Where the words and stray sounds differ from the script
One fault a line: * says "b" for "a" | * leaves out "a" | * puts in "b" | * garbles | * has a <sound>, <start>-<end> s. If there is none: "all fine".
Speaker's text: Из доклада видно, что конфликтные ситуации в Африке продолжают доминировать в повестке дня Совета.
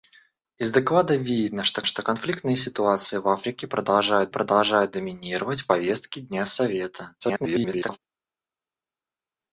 * puts in "что"
* puts in "продолжают"
* garbles